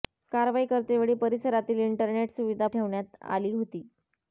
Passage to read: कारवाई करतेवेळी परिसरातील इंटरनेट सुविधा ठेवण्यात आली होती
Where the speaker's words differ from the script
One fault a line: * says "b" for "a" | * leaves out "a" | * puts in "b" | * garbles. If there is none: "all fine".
all fine